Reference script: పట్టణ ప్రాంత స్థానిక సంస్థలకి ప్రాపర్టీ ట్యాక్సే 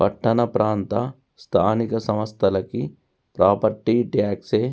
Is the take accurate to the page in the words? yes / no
yes